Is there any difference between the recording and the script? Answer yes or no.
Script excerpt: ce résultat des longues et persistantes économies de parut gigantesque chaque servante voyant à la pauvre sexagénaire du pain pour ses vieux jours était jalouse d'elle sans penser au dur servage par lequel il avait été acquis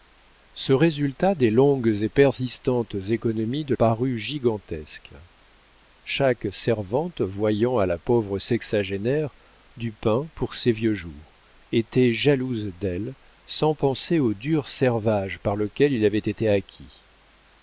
no